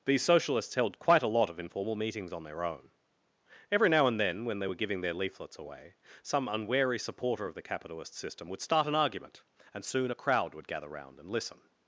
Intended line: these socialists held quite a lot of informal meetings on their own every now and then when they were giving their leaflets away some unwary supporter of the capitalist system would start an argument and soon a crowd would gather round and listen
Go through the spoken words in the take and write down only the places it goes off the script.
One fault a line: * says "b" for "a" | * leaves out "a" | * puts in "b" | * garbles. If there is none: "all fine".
all fine